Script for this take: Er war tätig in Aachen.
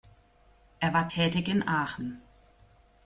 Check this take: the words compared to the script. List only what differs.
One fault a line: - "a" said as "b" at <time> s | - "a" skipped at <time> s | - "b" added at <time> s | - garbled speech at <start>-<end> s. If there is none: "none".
none